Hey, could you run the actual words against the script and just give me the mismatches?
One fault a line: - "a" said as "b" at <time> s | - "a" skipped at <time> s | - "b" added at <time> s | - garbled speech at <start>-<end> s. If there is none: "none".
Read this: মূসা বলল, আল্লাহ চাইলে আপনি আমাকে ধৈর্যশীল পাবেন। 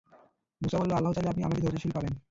none